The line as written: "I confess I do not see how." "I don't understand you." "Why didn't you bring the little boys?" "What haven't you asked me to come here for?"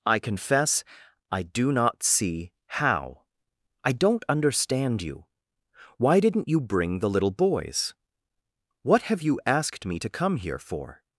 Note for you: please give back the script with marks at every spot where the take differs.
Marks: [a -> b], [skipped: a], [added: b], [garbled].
"I confess I do not see how." "I don't understand you." "Why didn't you bring the little boys?" "What [haven't -> have] you asked me to come here for?"